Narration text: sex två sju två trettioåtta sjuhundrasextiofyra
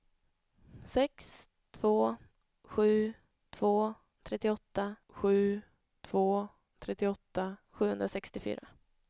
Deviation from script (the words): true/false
true